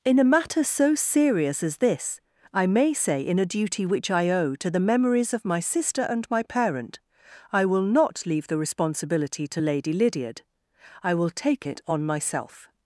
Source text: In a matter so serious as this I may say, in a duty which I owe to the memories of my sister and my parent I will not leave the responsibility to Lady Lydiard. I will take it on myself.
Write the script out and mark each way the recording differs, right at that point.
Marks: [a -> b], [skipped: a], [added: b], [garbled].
In a matter so serious as this I may say, in a duty which I owe to the memories of my sister and my parent I will not leave the responsibility to Lady Lydiard. I will take it on myself.